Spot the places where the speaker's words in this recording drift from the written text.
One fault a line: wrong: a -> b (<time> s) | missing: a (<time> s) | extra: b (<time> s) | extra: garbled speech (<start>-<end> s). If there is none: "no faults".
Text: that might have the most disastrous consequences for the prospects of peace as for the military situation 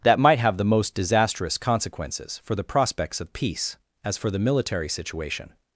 no faults